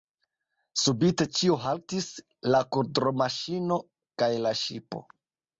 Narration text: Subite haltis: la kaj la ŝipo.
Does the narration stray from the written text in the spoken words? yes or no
yes